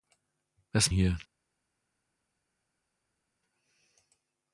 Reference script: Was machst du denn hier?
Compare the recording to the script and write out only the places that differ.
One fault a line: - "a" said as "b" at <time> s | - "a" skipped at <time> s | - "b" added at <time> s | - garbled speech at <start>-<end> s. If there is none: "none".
- "machst du denn" skipped at 0.9 s